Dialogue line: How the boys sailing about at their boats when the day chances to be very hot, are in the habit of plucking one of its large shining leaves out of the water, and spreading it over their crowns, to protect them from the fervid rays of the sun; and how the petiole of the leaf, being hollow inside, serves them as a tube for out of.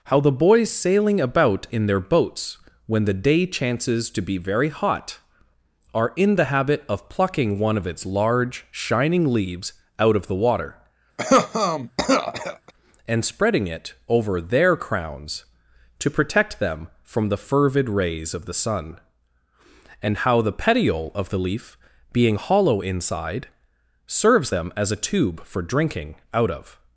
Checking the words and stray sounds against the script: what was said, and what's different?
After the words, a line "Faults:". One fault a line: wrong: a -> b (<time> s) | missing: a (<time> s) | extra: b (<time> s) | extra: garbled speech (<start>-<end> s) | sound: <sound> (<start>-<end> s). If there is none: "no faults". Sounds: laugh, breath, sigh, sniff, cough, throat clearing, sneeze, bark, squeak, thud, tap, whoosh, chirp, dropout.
How the boys sailing about in their boats when the day chances to be very hot, are in the habit of plucking one of its large shining leaves out of the water, and spreading it over their crowns, to protect them from the fervid rays of the sun; and how the petiole of the leaf, being hollow inside, serves them as a tube for drinking out of.
Faults:
wrong: at -> in (1.7 s)
sound: cough (11.2-12.7 s)
extra: drinking (25.6 s)